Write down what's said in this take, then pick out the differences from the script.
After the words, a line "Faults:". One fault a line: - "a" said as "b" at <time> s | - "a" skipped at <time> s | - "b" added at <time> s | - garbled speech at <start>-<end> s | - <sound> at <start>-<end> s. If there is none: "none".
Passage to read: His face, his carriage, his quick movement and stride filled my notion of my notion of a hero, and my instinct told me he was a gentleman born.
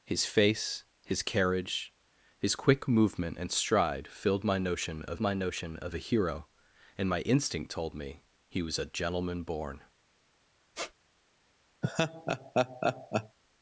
His face, his carriage, his quick movement and stride filled my notion of my notion of a hero, and my instinct told me he was a gentleman born.
Faults:
- squeak at 10.7-10.9 s
- laugh at 11.8-13.4 s